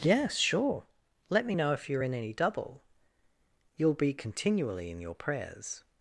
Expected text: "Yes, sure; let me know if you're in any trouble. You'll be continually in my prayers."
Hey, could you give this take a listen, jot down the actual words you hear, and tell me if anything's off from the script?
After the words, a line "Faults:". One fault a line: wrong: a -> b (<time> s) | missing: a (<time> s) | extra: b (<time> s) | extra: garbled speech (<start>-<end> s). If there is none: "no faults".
"Yes, sure; let me know if you're in any double. You'll be continually in your prayers."
Faults:
wrong: trouble -> double (2.3 s)
wrong: my -> your (5.0 s)